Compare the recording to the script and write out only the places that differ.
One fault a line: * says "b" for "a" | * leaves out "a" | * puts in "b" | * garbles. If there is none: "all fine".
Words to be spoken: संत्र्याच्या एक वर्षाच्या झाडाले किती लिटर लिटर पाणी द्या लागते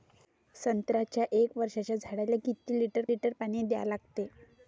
all fine